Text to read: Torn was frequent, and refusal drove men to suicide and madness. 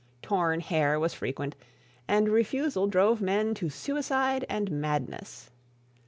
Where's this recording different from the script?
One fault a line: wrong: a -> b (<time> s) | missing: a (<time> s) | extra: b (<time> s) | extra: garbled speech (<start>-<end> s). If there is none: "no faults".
extra: hair (0.6 s)